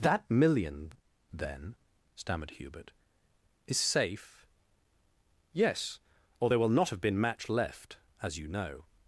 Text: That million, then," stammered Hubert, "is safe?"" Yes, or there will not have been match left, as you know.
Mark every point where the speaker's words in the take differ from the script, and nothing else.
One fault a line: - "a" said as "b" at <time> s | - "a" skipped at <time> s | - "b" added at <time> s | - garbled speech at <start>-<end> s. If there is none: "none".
none